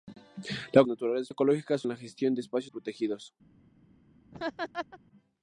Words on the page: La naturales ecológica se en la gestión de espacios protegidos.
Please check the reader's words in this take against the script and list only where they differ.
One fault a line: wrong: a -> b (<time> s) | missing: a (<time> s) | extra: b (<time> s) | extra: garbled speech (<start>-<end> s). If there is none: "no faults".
no faults